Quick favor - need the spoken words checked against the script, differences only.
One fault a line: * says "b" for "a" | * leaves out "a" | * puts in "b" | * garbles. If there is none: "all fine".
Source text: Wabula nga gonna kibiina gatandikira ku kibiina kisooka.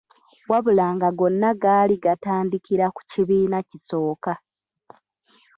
* says "gaali" for "kibiina"